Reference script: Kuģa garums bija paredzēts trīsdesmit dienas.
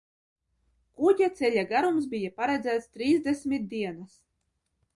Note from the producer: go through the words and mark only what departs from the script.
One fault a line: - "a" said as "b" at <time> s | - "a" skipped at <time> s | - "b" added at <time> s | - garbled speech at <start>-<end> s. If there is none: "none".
- "ceļa" added at 1.4 s